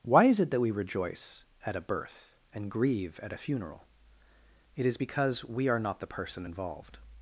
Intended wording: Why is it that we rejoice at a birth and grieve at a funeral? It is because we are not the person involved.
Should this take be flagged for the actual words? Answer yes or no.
no